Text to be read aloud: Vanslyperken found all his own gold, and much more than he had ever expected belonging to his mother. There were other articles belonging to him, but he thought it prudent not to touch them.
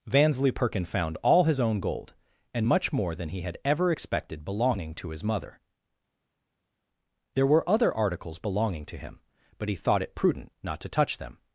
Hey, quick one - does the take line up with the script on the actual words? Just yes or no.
yes